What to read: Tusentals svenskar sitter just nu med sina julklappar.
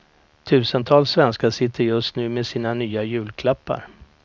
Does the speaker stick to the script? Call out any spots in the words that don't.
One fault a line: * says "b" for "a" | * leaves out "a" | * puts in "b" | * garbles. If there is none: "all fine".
* puts in "nya"